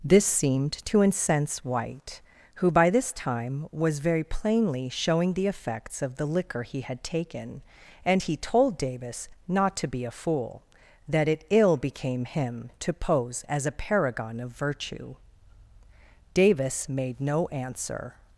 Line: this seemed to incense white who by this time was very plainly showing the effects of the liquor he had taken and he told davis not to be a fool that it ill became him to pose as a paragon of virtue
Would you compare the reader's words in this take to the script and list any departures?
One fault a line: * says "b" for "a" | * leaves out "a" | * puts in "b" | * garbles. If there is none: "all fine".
* puts in "davis made no answer"